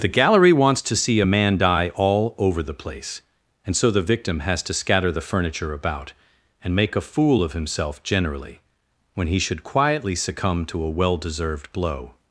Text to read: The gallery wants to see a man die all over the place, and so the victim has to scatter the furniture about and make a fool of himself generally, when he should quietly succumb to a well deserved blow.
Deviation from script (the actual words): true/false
false